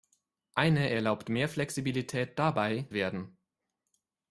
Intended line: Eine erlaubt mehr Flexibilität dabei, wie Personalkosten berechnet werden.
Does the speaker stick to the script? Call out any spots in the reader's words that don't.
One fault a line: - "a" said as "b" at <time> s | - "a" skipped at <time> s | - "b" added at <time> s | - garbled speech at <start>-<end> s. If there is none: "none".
- "wie Personalkosten berechnet" skipped at 2.9 s